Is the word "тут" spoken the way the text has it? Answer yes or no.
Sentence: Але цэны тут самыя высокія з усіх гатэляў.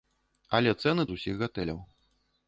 no